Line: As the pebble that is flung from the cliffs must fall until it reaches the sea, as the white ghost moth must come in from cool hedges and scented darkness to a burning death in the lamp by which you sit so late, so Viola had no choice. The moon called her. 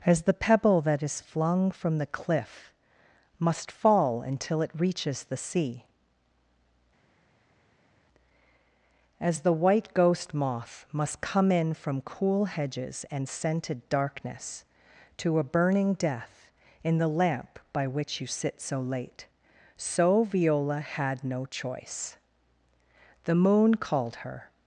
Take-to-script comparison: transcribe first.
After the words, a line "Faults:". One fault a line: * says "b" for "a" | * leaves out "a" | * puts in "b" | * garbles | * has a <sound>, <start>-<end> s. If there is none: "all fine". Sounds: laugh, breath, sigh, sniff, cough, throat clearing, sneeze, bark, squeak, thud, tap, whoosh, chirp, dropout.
As the pebble that is flung from the cliff must fall until it reaches the sea, as the white ghost moth must come in from cool hedges and scented darkness to a burning death in the lamp by which you sit so late, so Viola had no choice. The moon called her.
Faults:
* says "cliff" for "cliffs"